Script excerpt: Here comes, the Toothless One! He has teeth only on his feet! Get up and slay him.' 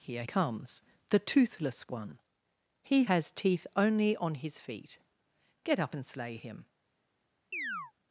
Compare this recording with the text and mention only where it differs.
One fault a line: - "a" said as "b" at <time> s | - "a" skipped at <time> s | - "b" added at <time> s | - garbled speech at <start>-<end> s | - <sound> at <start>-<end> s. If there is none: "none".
- chirp at 7.5-7.9 s